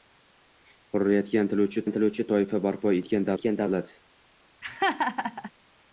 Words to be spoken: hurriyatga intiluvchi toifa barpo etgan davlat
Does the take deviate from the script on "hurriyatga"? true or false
false